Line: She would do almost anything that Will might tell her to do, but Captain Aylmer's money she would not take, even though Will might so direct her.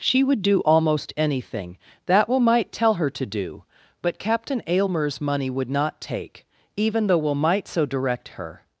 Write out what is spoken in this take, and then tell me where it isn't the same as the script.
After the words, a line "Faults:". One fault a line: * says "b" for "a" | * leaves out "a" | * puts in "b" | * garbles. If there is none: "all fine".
She would do almost anything that Will might tell her to do, but Captain Aylmer's money would not take, even though Will might so direct her.
Faults:
* leaves out "she"